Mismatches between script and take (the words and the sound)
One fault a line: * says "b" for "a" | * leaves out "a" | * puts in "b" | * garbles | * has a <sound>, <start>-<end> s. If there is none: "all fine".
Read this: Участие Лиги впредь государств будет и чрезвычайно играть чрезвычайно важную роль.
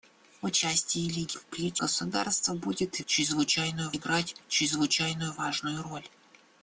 all fine